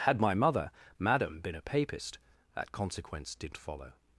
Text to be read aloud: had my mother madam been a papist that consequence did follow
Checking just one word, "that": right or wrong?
right